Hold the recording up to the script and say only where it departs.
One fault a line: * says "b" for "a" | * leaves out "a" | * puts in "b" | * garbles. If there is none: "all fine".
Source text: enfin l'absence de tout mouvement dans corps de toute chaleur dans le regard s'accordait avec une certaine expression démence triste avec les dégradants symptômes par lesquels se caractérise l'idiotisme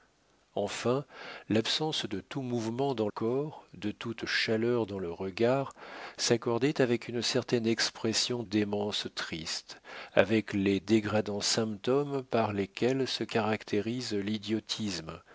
all fine